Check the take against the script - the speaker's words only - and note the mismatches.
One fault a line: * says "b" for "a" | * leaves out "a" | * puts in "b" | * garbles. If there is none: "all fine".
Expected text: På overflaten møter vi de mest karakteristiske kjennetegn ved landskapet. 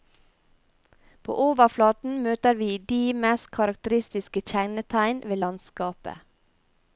all fine